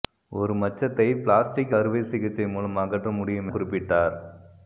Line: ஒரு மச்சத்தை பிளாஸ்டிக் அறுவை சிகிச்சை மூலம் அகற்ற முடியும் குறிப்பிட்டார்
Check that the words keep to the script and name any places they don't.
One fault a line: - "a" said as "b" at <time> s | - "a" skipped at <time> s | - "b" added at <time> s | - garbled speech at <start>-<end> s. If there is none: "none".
none